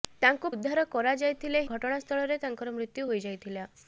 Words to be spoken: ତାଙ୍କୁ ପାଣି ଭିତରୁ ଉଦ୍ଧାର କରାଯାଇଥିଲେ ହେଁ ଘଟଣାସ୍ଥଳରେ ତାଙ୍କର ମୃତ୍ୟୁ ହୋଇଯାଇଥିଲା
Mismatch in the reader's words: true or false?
true